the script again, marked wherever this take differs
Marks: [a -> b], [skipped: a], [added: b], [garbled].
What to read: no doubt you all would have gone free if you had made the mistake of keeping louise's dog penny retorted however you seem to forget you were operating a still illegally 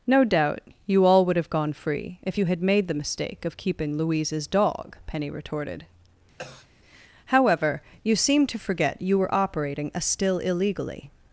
no doubt you all would have gone free if you had made the mistake of keeping louise's dog penny retorted however you seem to forget you were operating a still illegally